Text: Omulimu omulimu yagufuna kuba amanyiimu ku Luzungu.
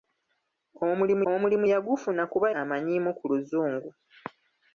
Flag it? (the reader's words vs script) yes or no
no